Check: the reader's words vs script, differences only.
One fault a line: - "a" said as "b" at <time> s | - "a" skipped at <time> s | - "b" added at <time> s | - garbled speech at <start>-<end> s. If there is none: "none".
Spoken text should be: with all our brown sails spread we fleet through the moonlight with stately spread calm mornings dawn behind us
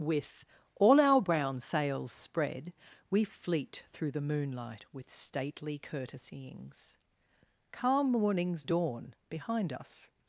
- "spread" said as "courtesyings" at 5.8 s